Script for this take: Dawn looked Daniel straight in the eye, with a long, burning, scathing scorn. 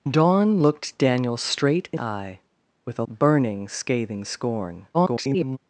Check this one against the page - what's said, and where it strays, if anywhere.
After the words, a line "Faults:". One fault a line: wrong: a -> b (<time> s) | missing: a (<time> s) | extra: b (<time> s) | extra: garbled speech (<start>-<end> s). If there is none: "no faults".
Dawn looked Daniel straight in eye, with a burning, scathing scorn. [garbled]
Faults:
missing: the (2.0 s)
missing: long (3.0 s)
extra: garbled speech (4.9-5.6 s)